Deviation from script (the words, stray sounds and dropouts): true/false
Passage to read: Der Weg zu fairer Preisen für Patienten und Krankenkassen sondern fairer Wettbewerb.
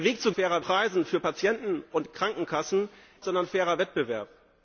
false